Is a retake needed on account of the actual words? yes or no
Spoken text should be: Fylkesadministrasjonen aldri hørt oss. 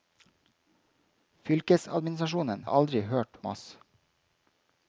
no